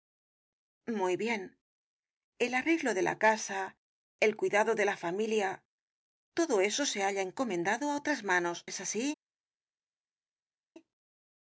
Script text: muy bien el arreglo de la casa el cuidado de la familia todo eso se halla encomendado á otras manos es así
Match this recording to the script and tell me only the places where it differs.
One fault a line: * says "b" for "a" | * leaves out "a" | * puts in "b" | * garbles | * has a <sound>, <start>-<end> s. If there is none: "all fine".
all fine